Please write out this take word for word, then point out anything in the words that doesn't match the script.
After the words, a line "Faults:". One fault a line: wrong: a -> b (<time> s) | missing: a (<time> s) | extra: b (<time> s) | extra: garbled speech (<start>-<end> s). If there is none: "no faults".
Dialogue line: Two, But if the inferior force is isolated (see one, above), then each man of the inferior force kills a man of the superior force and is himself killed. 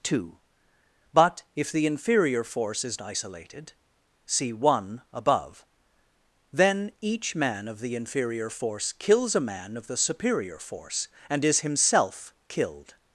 Two, But if the inferior force is isolated (see one, above), then each man of the inferior force kills a man of the superior force and is himself killed.
Faults:
no faults